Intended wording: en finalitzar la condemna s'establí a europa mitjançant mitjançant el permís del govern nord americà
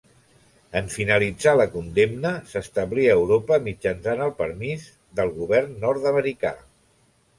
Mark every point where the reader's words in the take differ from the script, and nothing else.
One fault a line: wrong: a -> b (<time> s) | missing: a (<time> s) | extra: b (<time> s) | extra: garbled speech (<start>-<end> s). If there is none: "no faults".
missing: mitjançant (4.2 s)